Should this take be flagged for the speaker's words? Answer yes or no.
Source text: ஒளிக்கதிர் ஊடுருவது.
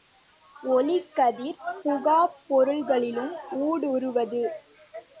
yes